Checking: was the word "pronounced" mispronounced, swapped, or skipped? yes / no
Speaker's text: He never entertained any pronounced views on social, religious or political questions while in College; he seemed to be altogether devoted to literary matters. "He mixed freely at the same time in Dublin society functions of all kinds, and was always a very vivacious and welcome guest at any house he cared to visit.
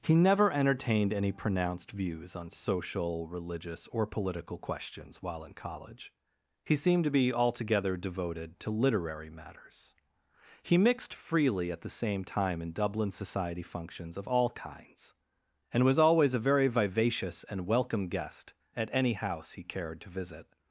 no